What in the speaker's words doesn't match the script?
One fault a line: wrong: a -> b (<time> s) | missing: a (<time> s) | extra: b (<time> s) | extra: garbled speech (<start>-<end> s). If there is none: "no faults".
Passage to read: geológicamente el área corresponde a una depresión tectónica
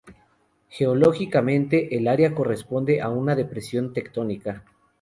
no faults